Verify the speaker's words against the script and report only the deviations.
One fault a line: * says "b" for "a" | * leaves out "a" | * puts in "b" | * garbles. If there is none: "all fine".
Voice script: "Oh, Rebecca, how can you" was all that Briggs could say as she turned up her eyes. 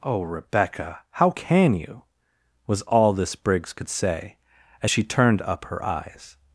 * says "this" for "that"